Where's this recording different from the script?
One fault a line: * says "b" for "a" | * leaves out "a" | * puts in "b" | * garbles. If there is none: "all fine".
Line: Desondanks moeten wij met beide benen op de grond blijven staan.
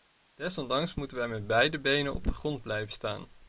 all fine